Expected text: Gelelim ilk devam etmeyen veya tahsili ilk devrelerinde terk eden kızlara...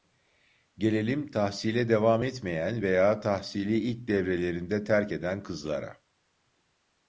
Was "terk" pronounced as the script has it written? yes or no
yes